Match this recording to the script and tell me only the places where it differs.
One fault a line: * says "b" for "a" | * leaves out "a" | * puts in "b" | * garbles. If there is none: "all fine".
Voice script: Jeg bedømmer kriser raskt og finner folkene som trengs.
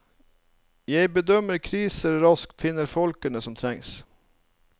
* leaves out "og"